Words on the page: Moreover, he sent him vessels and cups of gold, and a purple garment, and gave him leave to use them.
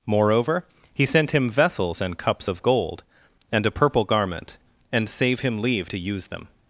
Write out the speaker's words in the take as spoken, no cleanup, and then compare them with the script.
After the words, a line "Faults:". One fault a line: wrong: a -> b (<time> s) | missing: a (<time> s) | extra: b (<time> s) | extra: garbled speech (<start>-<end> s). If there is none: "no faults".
Moreover, he sent him vessels and cups of gold, and a purple garment, and save him leave to use them.
Faults:
wrong: gave -> save (5.1 s)